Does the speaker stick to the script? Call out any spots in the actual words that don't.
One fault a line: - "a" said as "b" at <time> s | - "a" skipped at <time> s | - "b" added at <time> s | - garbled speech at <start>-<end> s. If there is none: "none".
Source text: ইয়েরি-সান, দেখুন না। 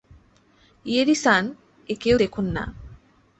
- "একেও" added at 1.9 s